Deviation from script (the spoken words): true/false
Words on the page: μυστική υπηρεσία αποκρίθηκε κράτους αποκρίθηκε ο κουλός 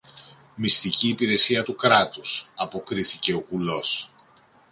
true